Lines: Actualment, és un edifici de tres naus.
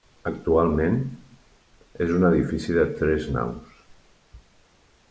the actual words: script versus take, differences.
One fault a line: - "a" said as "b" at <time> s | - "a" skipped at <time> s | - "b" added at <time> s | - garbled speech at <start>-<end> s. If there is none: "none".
none